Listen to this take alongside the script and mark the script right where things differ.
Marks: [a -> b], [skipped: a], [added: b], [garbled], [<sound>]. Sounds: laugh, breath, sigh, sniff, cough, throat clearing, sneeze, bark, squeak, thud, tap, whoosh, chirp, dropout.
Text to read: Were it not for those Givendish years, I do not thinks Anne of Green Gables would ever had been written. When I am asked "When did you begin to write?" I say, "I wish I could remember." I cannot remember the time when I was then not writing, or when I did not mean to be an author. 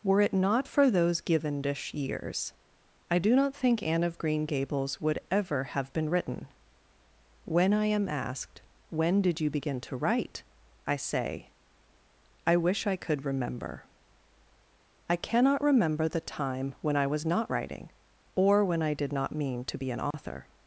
Were it not for those Givendish years, I do not [thinks -> think] Anne of Green Gables would ever [had -> have] been written. When I am asked "When did you begin to write?" I say, "I wish I could remember." I cannot remember the time when I was [skipped: then] not writing, or when I did not mean to be an author. [dropout]